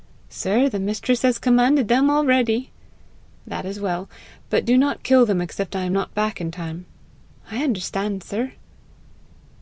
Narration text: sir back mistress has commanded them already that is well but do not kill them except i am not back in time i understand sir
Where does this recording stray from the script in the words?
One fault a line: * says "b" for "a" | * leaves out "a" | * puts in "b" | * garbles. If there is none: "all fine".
* says "the" for "back"